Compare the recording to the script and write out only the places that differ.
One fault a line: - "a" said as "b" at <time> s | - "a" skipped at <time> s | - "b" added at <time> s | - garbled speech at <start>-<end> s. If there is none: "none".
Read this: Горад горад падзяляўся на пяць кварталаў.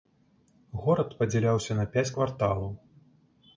- "горад" skipped at 1.1 s